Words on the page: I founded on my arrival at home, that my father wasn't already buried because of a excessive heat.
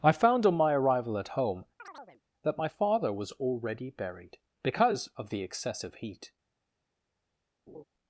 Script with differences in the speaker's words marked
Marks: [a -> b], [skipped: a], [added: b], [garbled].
I [founded -> found] on my arrival at home, that my father [wasn't -> was] already buried because of [a -> the] excessive heat.